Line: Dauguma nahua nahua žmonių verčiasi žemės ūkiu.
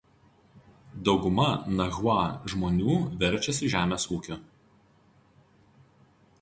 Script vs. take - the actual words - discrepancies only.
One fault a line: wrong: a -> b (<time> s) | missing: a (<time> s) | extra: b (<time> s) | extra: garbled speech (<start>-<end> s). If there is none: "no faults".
missing: nahua (2.1 s)